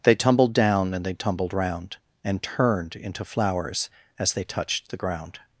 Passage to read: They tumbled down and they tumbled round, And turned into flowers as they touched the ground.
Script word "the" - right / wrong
right